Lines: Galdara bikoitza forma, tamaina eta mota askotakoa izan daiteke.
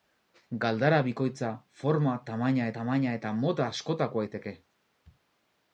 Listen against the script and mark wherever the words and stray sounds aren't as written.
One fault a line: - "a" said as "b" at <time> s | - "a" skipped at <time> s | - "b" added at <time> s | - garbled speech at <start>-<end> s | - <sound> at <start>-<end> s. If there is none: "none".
- "tamaina" added at 2.8 s
- "izan" skipped at 4.3 s